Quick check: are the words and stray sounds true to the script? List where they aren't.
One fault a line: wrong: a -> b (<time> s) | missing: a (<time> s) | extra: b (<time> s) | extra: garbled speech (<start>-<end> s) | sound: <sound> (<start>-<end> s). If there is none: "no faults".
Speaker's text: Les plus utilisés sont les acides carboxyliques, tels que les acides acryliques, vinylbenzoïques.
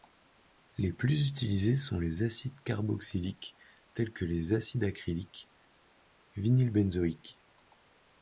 no faults